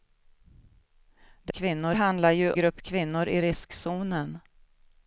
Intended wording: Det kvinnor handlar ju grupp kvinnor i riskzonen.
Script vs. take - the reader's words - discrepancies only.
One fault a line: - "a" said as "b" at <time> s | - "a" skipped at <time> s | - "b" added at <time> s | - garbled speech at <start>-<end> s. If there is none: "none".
none